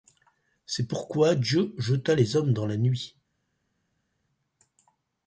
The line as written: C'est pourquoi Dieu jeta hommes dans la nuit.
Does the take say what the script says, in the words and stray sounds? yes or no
no